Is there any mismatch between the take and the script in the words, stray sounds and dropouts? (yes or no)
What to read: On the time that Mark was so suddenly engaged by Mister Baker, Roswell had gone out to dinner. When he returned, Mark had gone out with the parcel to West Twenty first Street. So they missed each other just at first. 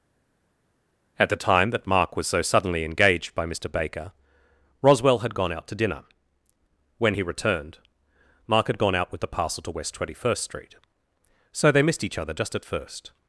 yes